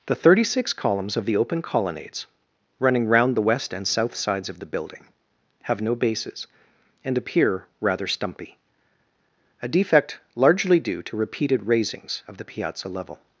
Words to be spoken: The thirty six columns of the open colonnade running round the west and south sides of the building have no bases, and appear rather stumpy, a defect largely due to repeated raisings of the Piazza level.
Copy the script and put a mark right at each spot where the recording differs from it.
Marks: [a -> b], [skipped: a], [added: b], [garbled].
The thirty six columns of the open [colonnade -> colonnades] running round the west and south sides of the building have no bases, and appear rather stumpy, a defect largely due to repeated raisings of the Piazza level.